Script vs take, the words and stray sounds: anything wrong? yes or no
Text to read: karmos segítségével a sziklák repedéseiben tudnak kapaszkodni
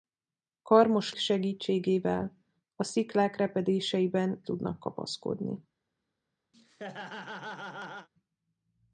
yes